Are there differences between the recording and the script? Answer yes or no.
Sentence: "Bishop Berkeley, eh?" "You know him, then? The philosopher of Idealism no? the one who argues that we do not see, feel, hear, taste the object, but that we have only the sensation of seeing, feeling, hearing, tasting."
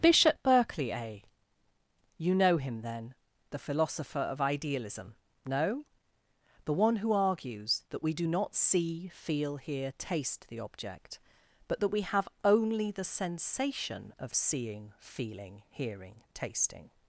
no